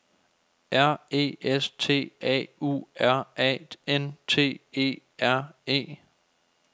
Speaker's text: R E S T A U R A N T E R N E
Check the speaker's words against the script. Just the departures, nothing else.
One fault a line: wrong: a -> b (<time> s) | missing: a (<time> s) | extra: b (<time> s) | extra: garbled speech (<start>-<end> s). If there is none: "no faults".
missing: N (5.5 s)